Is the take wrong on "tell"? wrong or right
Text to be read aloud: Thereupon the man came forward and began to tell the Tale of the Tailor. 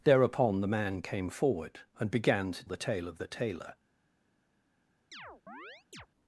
wrong